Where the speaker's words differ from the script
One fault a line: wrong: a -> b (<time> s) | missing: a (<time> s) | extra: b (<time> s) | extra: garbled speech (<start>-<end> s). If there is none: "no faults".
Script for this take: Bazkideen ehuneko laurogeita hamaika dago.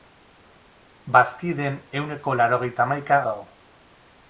no faults